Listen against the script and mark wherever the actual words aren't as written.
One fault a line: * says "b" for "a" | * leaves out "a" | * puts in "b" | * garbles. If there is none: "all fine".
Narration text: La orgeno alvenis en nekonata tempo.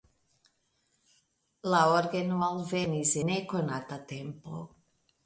* leaves out "en"